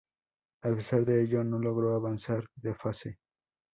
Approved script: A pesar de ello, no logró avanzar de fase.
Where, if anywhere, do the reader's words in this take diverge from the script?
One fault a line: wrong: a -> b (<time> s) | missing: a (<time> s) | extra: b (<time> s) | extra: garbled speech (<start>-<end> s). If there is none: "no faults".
no faults